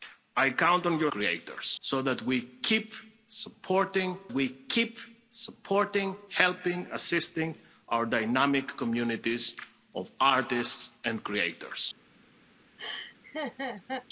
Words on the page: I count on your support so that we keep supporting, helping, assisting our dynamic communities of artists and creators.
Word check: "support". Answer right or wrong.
wrong